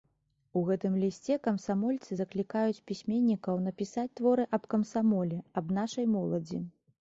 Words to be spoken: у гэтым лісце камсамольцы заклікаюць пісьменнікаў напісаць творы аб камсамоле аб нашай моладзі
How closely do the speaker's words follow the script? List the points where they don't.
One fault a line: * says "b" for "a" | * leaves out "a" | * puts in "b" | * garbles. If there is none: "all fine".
all fine